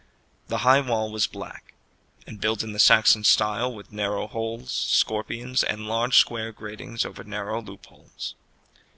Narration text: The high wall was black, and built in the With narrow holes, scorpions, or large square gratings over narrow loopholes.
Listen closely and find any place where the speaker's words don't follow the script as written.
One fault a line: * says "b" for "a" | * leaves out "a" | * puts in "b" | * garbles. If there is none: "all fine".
* puts in "Saxon style"
* says "and" for "or"